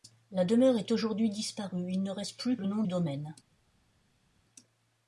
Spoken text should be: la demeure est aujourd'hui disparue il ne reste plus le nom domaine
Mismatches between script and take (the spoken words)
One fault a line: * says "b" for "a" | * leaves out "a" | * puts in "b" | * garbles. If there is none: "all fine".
all fine